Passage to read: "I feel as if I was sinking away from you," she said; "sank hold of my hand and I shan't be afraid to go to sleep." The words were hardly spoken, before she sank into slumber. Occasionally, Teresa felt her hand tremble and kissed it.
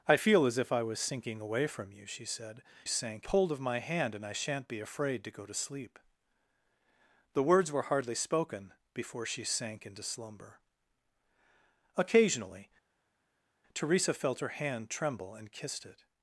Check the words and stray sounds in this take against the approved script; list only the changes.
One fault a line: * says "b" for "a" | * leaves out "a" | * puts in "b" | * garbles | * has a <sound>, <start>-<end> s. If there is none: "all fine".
all fine